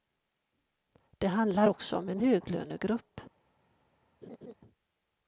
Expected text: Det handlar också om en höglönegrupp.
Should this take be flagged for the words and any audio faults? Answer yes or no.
yes